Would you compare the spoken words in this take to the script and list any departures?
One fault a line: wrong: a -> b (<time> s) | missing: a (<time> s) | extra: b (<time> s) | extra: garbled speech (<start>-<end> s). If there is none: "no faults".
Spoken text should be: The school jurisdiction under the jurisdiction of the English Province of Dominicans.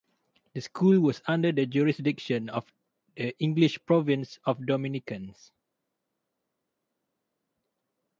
wrong: jurisdiction -> was (1.0 s)